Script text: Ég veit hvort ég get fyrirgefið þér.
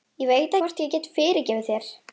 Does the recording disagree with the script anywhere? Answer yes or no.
no